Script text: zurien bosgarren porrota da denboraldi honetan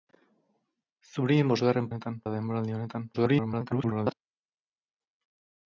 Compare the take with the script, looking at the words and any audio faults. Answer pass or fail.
fail